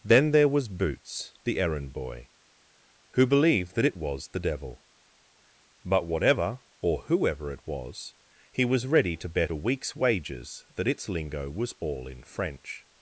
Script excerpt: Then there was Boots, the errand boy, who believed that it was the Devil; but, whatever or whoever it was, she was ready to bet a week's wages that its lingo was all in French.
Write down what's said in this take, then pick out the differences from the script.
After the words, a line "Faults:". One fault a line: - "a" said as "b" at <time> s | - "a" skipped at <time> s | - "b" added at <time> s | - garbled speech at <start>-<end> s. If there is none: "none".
Then there was Boots, the errand boy, who believed that it was the Devil; but, whatever or whoever it was, he was ready to bet a week's wages that its lingo was all in French.
Faults:
- "she" said as "he" at 8.5 s